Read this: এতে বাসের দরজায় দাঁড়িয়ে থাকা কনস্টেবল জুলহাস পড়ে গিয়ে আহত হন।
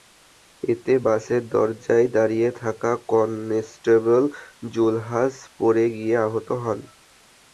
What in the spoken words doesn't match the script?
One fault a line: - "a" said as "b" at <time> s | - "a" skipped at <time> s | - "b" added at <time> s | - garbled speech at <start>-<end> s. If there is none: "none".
none